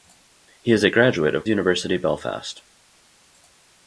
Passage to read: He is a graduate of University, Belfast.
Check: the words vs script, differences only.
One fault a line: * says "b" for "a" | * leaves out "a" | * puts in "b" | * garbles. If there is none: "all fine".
all fine